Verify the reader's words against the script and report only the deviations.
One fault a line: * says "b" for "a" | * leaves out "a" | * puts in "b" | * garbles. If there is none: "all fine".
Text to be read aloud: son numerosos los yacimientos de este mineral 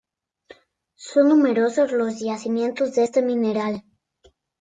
all fine